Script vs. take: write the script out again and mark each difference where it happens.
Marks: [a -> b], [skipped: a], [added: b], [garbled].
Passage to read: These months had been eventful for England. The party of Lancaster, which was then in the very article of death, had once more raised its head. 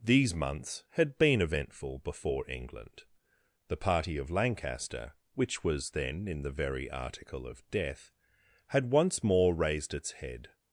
These months had been eventful [for -> before] England. The party of Lancaster, which was then in the very article of death, had once more raised its head.